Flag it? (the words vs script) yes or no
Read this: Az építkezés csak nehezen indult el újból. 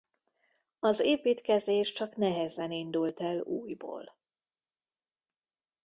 no